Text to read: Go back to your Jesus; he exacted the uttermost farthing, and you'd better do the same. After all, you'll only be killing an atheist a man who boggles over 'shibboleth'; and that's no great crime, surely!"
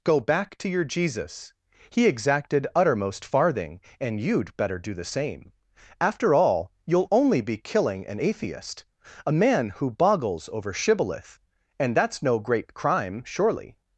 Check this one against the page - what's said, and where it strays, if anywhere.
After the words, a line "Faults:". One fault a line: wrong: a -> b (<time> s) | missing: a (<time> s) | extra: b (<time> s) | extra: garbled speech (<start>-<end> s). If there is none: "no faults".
Go back to your Jesus; he exacted uttermost farthing, and you'd better do the same. After all, you'll only be killing an atheist a man who boggles over 'shibboleth'; and that's no great crime, surely!"
Faults:
missing: the (2.6 s)